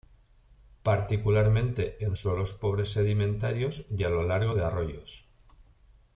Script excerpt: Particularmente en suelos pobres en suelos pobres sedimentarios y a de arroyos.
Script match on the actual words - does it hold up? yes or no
no